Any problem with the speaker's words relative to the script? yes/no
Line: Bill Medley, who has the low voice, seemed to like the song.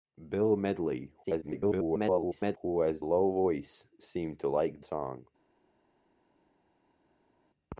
yes